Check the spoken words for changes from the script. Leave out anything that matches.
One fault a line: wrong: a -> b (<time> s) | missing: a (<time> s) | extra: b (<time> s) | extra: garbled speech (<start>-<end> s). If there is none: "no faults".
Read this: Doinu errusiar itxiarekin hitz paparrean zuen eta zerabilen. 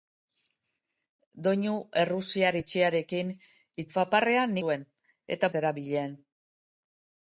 no faults